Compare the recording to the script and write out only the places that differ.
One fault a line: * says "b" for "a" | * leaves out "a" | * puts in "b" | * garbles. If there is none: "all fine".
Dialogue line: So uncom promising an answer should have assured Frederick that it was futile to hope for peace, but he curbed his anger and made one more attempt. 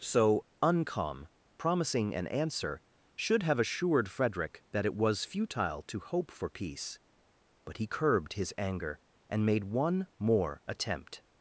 all fine